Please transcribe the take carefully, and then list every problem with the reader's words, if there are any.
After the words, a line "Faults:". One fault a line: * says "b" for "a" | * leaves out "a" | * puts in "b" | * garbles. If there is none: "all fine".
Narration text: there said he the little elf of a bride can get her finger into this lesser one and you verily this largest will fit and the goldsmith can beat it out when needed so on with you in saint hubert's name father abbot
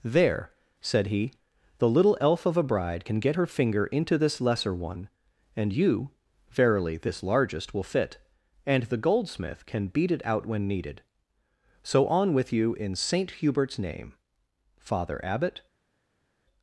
there said he the little elf of a bride can get her finger into this lesser one and you verily this largest will fit and the goldsmith can beat it out when needed so on with you in saint hubert's name father abbot
Faults:
all fine